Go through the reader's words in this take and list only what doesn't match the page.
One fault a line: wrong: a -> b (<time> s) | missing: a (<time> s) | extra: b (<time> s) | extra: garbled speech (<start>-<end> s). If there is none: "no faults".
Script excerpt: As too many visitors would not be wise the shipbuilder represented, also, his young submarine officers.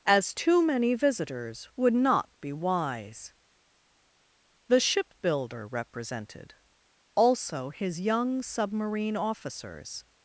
no faults